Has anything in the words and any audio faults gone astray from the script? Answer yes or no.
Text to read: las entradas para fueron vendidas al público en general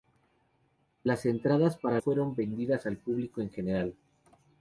no